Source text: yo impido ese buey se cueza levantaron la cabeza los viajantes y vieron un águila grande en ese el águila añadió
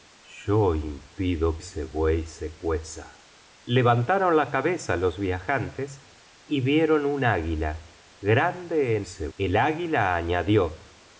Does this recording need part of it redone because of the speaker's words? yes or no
no